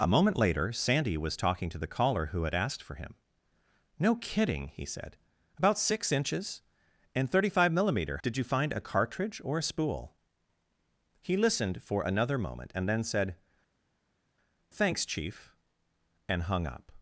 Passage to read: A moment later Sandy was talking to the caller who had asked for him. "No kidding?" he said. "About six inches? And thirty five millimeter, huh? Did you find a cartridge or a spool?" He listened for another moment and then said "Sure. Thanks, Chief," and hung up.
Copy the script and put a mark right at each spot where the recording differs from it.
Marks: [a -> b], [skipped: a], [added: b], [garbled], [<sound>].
A moment later Sandy was talking to the caller who had asked for him. "No kidding?" he said. "About six inches? And thirty five millimeter, [skipped: huh?] Did you find a cartridge or a spool?" He listened for another moment and then said [skipped: "Sure.] Thanks, Chief," and hung up.